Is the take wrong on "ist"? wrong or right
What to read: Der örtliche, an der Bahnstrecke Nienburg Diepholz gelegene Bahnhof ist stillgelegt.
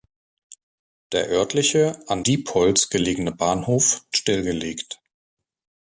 wrong